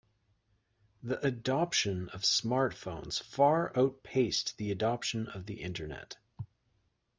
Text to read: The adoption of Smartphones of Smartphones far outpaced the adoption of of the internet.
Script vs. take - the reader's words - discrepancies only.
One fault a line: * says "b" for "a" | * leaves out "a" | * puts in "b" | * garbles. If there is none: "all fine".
* leaves out "of Smartphones"
* leaves out "of"